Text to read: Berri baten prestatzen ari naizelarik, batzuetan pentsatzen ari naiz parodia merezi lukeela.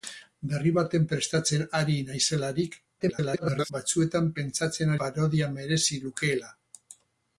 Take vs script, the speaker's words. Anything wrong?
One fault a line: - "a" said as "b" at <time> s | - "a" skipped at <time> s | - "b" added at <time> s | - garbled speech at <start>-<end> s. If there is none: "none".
- garbled speech at 3.0-3.7 s
- "ari naiz" skipped at 4.9 s